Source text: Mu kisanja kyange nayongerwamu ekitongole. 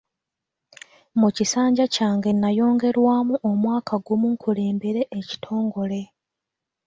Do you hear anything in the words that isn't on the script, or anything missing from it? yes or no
yes